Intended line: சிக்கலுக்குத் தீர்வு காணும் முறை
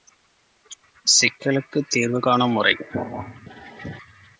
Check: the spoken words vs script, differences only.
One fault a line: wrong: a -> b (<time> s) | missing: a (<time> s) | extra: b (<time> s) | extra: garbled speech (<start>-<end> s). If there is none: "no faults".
no faults